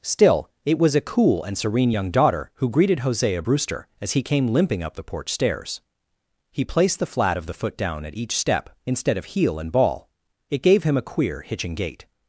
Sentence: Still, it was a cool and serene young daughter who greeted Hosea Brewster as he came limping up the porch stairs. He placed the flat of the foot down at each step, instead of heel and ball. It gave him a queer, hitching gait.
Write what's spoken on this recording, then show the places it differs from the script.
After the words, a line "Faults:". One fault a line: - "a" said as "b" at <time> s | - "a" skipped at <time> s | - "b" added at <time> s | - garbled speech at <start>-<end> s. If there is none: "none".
Still, it was a cool and serene young daughter who greeted Hosea Brewster as he came limping up the porch stairs. He placed the flat of the foot down at each step, instead of heel and ball. It gave him a queer, hitching gait.
Faults:
none